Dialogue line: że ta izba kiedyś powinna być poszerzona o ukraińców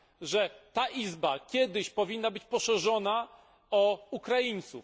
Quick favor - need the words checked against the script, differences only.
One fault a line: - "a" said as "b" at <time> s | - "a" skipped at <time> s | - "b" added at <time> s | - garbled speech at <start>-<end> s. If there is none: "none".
none